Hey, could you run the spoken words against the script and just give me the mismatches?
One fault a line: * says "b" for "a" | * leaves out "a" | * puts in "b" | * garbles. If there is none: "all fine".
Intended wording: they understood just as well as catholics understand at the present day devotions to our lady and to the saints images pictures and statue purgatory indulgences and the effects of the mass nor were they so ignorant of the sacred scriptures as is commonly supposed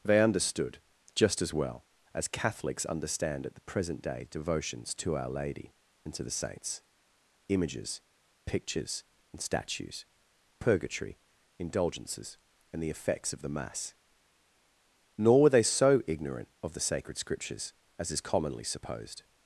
* says "statues" for "statue"